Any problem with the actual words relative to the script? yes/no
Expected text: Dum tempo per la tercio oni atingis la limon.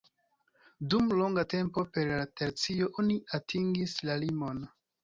yes